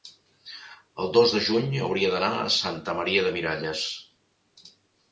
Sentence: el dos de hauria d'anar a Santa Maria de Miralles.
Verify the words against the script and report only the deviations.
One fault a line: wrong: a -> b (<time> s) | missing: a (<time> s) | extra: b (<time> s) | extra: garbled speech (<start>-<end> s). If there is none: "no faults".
extra: juny (1.5 s)